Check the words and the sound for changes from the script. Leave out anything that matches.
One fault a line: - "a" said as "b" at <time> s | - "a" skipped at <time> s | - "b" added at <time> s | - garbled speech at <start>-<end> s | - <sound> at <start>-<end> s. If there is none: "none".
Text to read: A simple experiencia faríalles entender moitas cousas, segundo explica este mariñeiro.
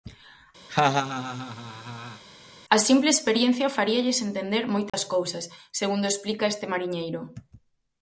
- laugh at 0.7-2.2 s
- dropout at 4.9-4.9 s